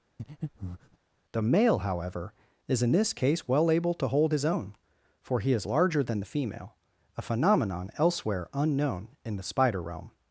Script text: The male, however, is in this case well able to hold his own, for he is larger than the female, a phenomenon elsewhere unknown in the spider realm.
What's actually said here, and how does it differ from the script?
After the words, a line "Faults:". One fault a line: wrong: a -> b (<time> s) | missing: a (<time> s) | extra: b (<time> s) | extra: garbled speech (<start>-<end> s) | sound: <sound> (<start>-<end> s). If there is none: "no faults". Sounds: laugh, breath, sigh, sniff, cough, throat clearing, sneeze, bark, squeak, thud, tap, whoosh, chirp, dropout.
The male, however, is in this case well able to hold his own, for he is larger than the female, a phenomenon elsewhere unknown in the spider realm.
Faults:
sound: breath (0.2-1.0 s)